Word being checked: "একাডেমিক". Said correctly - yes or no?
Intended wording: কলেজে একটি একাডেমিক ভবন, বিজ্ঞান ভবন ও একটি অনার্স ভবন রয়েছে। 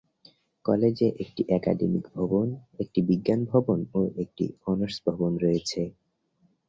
yes